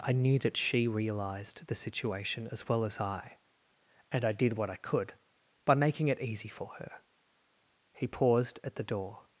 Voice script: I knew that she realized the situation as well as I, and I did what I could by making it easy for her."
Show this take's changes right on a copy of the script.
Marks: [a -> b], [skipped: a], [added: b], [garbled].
I knew that she realized the situation as well as I, and I did what I could by making it easy for her." [added: He paused at the door]